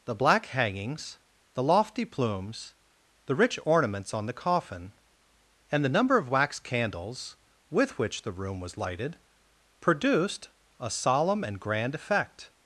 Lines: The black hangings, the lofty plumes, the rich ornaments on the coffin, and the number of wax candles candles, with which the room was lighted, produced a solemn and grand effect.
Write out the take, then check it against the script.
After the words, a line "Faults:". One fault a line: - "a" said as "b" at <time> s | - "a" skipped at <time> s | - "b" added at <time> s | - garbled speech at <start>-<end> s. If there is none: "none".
The black hangings, the lofty plumes, the rich ornaments on the coffin, and the number of wax candles, with which the room was lighted, produced a solemn and grand effect.
Faults:
- "candles" skipped at 7.3 s